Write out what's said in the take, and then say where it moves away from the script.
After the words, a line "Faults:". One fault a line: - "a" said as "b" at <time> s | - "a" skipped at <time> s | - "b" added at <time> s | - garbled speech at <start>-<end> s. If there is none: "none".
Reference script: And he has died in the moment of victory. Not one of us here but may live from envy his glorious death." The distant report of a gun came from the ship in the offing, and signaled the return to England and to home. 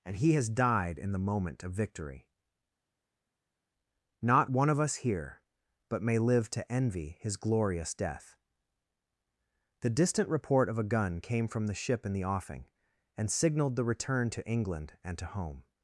And he has died in the moment of victory. Not one of us here but may live to envy his glorious death." The distant report of a gun came from the ship in the offing, and signaled the return to England and to home.
Faults:
- "from" said as "to" at 6.5 s